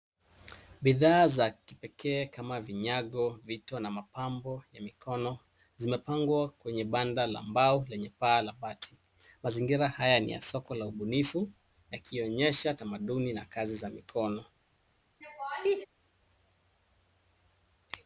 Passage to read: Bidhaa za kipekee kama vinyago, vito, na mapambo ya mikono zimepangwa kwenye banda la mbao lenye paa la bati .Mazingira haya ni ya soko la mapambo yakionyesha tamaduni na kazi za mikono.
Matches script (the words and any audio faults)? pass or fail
fail